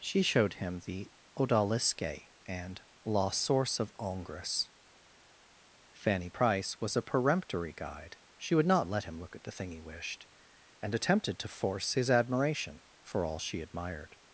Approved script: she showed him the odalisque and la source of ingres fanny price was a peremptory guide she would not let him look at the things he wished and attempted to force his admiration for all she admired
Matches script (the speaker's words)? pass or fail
fail